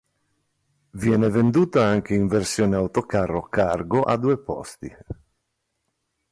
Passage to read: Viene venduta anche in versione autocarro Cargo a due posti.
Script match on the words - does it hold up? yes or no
yes